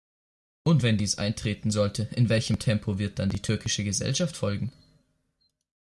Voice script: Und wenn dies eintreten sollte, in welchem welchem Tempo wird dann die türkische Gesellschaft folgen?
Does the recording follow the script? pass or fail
fail